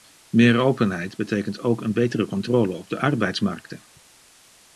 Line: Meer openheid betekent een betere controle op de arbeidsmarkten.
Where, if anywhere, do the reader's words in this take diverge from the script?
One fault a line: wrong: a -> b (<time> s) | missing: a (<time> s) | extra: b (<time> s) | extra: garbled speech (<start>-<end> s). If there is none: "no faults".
extra: ook (1.6 s)